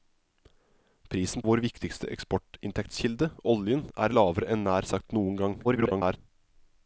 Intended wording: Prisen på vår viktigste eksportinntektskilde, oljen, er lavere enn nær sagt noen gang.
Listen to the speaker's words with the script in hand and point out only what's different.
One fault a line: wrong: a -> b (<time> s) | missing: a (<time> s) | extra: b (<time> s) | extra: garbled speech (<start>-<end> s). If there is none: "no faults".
missing: på (1.4 s)
extra: garbled speech (5.6-6.2 s)